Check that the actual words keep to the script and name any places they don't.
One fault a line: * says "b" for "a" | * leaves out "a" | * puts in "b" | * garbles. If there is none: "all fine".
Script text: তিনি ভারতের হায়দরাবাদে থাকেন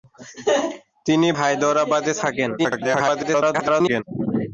* leaves out "ভারতের"
* garbles